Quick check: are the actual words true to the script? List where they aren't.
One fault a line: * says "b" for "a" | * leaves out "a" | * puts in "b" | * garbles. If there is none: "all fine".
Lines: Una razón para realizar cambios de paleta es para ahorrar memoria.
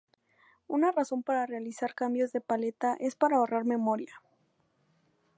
all fine